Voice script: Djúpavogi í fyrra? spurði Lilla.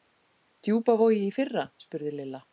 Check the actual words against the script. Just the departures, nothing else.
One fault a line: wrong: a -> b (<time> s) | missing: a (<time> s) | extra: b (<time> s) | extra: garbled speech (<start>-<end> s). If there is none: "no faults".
no faults